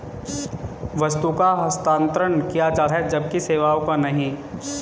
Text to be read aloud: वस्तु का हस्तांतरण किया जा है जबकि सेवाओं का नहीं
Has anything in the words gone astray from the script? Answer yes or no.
no